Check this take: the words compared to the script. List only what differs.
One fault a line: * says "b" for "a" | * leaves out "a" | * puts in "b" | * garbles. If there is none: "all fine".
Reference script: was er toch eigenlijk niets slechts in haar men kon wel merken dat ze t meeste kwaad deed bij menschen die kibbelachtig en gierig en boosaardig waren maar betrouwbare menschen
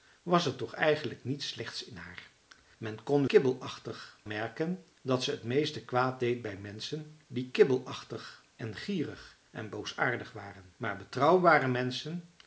* says "kibbelachtig" for "wel"